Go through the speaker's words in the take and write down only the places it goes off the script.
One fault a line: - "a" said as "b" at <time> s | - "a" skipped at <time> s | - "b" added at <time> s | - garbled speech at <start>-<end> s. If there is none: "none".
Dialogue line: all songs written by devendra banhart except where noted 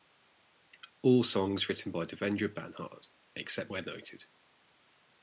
none